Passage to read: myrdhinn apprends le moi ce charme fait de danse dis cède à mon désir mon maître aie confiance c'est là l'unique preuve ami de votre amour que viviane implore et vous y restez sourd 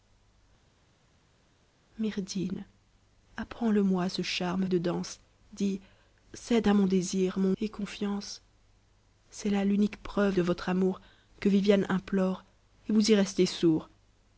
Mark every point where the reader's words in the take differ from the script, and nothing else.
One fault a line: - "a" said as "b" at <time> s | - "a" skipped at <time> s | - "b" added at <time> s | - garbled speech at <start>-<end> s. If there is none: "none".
- "fait" skipped at 4.7 s
- "maître" skipped at 7.6 s
- "ami" skipped at 10.4 s